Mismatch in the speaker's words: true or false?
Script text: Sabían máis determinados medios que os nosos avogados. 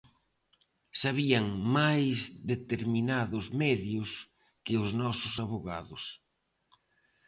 false